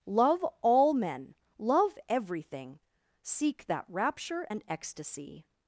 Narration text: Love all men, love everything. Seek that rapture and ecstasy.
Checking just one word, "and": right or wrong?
right